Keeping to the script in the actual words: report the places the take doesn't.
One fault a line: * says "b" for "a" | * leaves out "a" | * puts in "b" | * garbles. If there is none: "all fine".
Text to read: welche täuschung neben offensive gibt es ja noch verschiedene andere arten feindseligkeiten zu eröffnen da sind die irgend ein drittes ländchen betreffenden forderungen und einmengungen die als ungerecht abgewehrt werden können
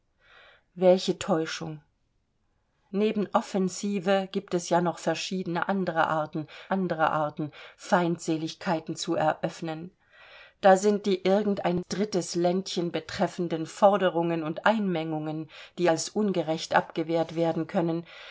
* puts in "andere arten"